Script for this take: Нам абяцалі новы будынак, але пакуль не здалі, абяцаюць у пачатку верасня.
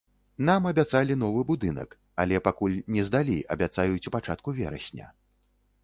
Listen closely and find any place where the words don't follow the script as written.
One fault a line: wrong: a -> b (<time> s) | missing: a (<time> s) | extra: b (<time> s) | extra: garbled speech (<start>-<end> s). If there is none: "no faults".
no faults